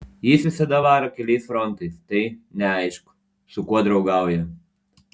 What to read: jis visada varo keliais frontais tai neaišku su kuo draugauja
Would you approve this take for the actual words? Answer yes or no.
yes